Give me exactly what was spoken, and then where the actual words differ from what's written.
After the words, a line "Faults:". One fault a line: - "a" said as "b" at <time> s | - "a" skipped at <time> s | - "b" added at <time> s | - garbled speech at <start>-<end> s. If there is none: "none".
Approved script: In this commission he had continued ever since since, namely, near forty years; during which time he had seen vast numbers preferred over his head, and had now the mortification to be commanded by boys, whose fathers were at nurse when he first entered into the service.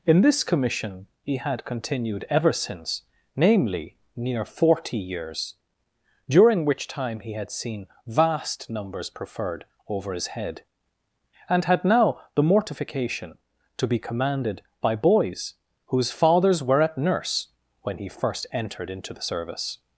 In this commission he had continued ever since, namely, near forty years; during which time he had seen vast numbers preferred over his head, and had now the mortification to be commanded by boys, whose fathers were at nurse when he first entered into the service.
Faults:
- "since" skipped at 3.0 s